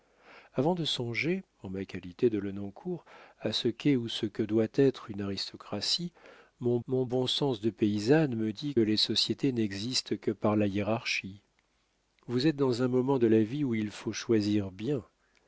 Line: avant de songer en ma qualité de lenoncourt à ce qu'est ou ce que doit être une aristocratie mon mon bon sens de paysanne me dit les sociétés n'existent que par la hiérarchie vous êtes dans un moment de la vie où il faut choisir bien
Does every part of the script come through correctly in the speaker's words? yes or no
yes